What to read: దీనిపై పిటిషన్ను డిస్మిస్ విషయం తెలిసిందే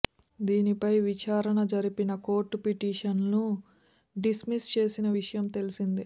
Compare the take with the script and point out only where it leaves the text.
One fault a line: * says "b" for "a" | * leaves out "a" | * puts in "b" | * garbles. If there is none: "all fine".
* puts in "విచారణ జరిపిన కోర్టు"
* puts in "చేసిన"